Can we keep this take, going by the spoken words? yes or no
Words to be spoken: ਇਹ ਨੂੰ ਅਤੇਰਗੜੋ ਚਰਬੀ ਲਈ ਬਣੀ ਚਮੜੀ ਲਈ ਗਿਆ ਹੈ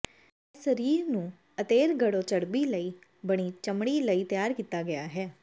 no